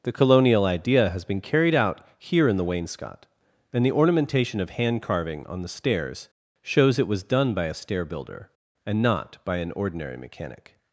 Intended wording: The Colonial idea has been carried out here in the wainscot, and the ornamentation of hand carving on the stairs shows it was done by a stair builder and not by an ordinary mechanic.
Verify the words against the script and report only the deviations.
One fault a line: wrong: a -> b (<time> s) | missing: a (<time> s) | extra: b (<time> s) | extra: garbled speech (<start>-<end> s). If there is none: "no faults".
no faults